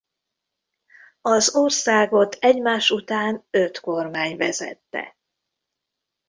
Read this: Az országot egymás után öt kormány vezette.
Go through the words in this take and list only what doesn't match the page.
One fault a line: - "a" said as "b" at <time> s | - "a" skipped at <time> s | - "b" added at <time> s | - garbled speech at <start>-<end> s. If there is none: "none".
none